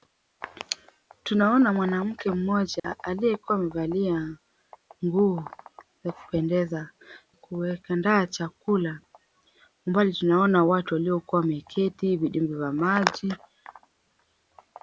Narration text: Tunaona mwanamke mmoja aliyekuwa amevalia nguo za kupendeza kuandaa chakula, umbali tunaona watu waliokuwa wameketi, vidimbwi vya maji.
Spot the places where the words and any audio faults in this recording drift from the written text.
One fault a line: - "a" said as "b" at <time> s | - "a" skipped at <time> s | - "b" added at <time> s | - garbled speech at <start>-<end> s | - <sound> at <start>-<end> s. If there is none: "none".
- dropout at 2.8-2.8 s